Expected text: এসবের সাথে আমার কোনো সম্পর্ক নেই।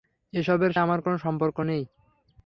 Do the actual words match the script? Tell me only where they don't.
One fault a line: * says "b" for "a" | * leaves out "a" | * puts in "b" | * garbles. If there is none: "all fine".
* leaves out "সাথে"